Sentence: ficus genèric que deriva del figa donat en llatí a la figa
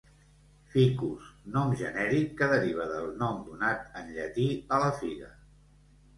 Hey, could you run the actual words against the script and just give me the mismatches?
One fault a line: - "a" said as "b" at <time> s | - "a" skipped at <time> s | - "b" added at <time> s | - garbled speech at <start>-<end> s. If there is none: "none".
- "nom" added at 1.6 s
- "figa" said as "nom" at 3.2 s